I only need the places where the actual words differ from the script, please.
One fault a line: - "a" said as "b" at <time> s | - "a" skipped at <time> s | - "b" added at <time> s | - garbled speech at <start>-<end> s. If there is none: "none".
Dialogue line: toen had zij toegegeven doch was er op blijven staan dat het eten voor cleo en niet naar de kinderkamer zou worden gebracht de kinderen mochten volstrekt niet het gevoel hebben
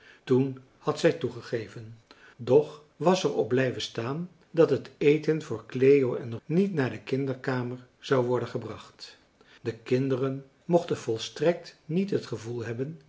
none